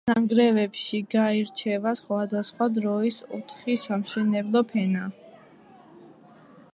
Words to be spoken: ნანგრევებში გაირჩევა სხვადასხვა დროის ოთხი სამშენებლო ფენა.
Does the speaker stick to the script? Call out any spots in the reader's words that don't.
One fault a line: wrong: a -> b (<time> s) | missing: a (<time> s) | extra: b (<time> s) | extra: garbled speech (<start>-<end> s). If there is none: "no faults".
no faults